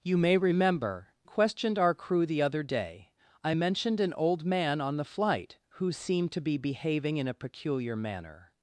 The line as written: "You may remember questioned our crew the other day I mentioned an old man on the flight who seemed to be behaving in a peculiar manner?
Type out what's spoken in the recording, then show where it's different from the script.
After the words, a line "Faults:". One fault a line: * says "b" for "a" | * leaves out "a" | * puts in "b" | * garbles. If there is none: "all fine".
"You may remember questioned our crew the other day I mentioned an old man on the flight who seemed to be behaving in a peculiar manner?
Faults:
all fine